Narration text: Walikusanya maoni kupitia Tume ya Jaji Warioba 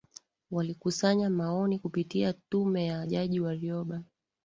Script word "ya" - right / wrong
right